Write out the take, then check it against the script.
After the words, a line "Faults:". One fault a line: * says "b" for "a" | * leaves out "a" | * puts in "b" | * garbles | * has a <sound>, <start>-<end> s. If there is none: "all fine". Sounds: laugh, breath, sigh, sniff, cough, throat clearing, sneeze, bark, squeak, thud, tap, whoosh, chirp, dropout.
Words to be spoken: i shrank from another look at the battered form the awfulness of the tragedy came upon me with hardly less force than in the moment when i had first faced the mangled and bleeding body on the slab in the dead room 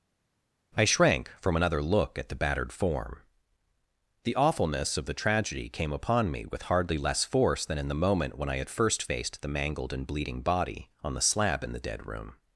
i shrank from another look at the battered form the awfulness of the tragedy came upon me with hardly less force than in the moment when i had first faced the mangled and bleeding body on the slab in the dead room
Faults:
all fine